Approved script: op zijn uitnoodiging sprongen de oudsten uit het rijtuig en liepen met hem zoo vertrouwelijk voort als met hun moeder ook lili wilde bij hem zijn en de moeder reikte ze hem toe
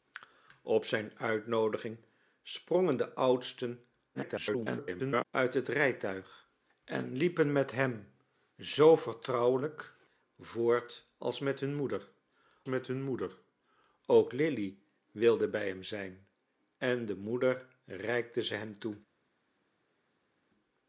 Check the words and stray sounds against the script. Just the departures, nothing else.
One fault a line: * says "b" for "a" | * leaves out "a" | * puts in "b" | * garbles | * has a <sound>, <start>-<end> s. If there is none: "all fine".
* garbles
* puts in "met hun moeder"